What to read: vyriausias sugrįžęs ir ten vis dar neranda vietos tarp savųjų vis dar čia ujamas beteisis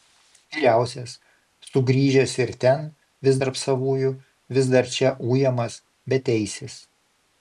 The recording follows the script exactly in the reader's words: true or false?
false